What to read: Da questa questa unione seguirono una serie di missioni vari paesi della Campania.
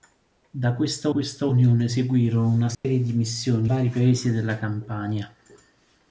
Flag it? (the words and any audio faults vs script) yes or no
yes